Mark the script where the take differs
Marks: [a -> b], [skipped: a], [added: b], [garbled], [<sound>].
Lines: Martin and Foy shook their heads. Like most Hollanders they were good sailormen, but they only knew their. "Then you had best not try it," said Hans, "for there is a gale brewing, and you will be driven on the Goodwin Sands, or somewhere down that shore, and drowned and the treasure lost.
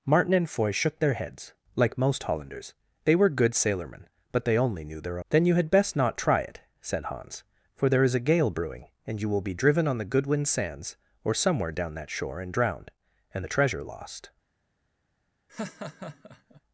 Martin and Foy shook their heads. Like most Hollanders they were good sailormen, but they only knew their. "Then you had best not try it," said Hans, "for there is a gale brewing, and you will be driven on the Goodwin Sands, or somewhere down that shore, and drowned and the treasure lost. [laugh]